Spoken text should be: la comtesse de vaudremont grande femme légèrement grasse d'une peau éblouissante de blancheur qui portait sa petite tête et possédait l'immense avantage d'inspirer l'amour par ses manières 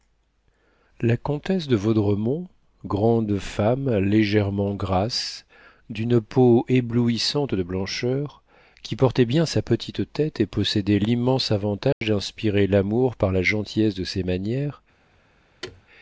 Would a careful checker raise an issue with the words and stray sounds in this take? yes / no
yes